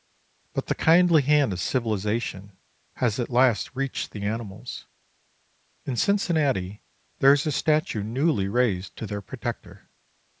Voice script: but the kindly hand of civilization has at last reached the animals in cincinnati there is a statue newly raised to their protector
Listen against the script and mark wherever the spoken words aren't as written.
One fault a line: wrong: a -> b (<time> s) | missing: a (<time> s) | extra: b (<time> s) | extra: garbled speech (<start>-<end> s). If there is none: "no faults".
no faults